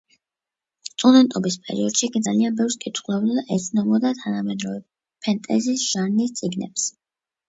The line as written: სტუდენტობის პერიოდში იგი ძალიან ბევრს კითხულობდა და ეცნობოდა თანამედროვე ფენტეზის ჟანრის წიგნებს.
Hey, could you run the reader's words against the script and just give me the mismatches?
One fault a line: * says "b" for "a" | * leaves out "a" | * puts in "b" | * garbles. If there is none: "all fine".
all fine